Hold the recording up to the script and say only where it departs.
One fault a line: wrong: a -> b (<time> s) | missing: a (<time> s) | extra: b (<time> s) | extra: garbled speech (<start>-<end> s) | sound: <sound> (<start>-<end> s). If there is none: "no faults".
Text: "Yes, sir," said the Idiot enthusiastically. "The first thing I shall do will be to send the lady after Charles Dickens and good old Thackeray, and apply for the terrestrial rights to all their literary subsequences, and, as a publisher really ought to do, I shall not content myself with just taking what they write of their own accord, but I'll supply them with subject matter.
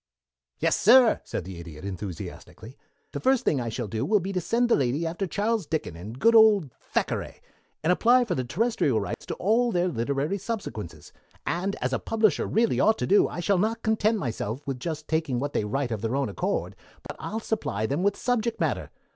sound: dropout (9.1-9.2 s)
sound: dropout (17.1-17.1 s)